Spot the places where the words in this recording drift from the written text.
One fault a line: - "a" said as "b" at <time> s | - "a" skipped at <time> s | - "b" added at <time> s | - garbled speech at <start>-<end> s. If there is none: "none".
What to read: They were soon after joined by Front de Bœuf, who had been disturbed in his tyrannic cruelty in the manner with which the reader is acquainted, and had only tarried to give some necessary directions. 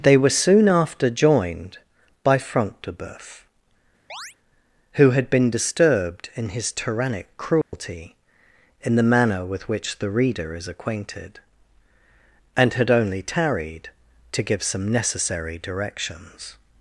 none